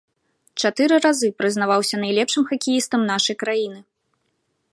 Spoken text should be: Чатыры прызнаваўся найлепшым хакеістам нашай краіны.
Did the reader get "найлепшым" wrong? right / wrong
right